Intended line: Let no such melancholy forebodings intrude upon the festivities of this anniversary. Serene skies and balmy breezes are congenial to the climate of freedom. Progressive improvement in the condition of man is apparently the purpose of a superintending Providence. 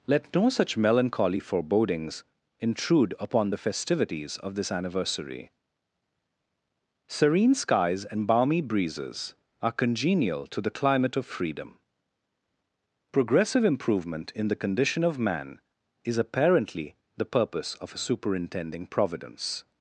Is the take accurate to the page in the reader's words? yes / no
yes